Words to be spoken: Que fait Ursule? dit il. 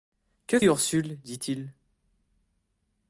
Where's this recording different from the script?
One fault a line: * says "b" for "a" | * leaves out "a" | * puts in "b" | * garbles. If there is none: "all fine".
* leaves out "fait"